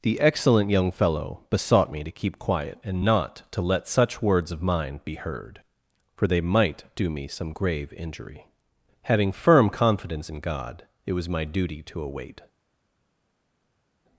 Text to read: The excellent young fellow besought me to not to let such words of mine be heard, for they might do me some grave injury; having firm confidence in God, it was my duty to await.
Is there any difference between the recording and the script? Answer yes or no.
yes